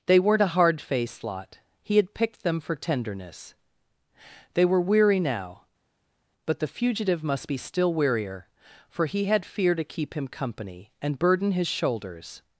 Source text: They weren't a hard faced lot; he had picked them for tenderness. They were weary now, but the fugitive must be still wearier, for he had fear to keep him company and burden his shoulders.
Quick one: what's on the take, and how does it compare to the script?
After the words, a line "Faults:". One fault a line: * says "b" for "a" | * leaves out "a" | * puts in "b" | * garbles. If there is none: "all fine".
They weren't a hard faced lot; he had picked them for tenderness. They were weary now, but the fugitive must be still wearier, for he had fear to keep him company and burden his shoulders.
Faults:
all fine